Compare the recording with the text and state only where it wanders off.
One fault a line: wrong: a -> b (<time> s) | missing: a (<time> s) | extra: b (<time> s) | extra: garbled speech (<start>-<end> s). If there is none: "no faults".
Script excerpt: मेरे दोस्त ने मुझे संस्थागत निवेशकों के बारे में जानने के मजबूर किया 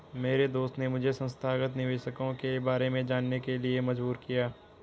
extra: लिए (3.6 s)